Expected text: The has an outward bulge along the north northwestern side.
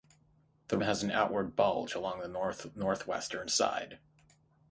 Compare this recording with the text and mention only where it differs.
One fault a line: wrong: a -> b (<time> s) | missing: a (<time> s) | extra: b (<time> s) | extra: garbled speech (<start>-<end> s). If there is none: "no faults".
no faults